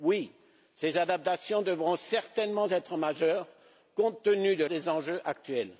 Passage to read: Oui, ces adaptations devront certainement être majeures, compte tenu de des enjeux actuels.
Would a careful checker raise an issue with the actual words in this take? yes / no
no